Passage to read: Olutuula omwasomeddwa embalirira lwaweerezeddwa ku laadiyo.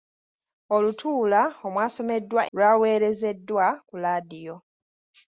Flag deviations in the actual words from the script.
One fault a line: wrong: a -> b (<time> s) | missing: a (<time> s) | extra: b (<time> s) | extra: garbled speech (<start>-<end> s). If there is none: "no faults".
missing: embalirira (2.4 s)